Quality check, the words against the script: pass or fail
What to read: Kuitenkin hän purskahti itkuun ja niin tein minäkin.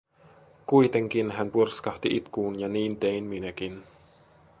pass